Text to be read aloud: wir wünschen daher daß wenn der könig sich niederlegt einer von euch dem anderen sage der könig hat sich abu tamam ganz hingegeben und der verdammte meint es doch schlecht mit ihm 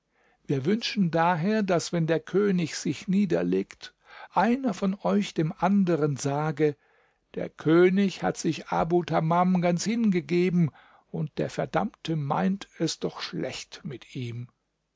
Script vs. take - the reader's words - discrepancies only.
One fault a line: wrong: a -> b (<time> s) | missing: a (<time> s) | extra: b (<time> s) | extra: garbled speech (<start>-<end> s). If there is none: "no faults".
no faults